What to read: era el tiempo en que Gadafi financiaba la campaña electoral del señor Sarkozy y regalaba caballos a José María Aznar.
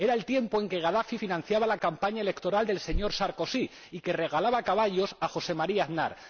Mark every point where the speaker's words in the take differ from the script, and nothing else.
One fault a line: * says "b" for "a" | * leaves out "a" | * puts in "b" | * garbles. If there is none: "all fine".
all fine